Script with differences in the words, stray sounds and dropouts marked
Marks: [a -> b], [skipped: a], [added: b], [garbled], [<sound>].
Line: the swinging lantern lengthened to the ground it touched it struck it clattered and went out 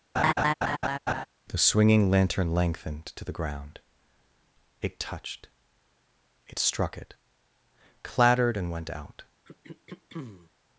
[laugh] the swinging lantern lengthened to the ground it touched it struck it clattered and went out [throat clearing]